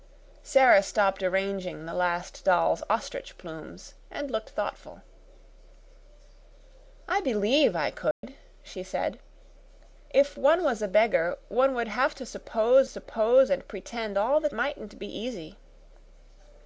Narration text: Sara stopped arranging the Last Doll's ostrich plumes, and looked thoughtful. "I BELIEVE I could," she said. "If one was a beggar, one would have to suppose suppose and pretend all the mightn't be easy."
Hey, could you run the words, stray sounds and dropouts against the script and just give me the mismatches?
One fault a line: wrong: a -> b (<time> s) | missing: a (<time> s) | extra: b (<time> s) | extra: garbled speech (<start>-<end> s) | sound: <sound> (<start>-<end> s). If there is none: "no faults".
sound: dropout (8.1-8.2 s)